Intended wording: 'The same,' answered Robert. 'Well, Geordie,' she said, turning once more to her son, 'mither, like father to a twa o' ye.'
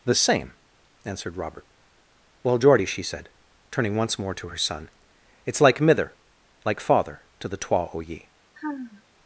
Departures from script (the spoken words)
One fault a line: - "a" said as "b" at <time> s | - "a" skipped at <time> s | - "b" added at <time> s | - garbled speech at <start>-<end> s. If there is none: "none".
- "it's like" added at 5.5 s
- "a" said as "the" at 7.5 s